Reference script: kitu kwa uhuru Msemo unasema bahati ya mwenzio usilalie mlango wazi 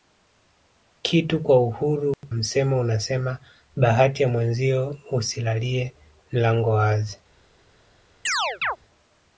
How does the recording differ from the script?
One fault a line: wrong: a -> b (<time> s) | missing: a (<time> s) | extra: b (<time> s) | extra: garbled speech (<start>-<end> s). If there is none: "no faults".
no faults